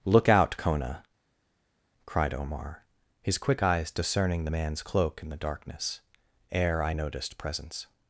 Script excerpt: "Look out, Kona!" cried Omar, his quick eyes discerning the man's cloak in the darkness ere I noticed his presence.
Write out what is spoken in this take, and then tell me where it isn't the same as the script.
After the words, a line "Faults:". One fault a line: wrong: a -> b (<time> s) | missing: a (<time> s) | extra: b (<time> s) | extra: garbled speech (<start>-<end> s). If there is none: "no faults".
"Look out, Kona!" cried Omar, his quick eyes discerning the man's cloak in the darkness ere I noticed presence.
Faults:
missing: his (7.4 s)